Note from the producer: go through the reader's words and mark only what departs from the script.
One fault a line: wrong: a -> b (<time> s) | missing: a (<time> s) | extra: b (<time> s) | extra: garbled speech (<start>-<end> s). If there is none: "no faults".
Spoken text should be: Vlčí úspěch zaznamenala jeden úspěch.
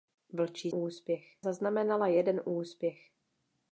no faults